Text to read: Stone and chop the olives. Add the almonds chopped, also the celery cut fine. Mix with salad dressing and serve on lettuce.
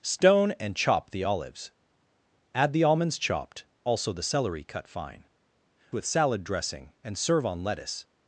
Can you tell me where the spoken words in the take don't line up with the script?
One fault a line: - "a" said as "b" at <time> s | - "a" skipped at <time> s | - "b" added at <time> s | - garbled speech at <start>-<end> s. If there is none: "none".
- "Mix" skipped at 5.2 s